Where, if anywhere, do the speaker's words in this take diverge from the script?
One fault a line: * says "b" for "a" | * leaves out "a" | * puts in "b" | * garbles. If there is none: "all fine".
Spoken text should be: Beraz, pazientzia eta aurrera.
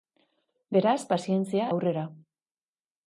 * leaves out "eta"